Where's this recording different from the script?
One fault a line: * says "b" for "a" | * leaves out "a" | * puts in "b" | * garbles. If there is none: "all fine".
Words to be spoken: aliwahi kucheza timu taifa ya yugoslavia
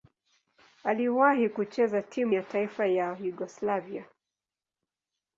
* puts in "ya"